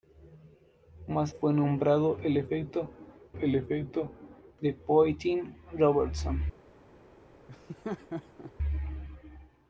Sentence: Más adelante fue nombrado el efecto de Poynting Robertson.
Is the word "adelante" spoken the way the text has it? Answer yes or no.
no